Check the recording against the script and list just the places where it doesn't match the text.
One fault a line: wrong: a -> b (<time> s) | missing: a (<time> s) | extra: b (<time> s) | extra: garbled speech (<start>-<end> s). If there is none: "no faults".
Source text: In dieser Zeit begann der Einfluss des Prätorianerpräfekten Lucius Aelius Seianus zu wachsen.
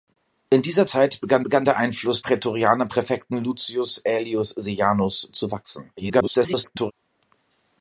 extra: begann (1.4 s)
missing: des (2.2 s)
extra: garbled speech (6.0-6.9 s)